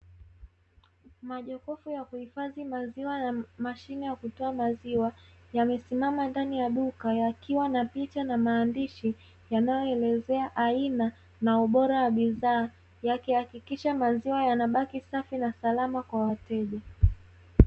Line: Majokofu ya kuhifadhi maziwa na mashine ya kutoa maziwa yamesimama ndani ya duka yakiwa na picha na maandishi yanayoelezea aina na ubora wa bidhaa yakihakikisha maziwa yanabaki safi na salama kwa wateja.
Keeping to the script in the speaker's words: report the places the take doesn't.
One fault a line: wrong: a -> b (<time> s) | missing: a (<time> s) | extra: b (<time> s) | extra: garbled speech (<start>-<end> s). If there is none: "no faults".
no faults